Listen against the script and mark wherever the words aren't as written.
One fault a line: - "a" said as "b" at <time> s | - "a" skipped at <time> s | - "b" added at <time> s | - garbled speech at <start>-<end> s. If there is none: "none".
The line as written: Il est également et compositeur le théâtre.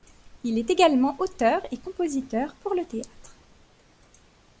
- "auteur" added at 1.2 s
- "pour" added at 2.6 s